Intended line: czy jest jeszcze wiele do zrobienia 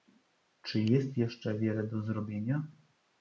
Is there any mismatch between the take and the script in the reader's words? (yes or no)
no